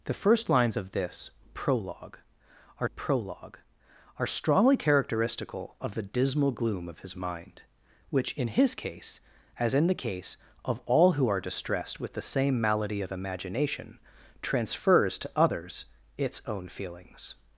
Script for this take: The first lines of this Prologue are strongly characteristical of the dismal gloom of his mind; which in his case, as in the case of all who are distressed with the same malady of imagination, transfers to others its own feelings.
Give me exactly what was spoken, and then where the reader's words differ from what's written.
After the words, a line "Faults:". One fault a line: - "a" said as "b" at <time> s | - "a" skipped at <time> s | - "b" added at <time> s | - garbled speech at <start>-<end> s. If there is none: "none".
The first lines of this Prologue are Prologue are strongly characteristical of the dismal gloom of his mind; which in his case, as in the case of all who are distressed with the same malady of imagination, transfers to others its own feelings.
Faults:
- "Prologue are" added at 2.9 s